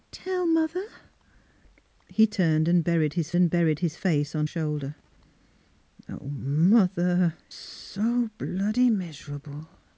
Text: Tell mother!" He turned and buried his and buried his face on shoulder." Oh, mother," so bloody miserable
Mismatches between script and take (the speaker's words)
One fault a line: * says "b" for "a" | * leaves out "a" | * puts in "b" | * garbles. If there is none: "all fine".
all fine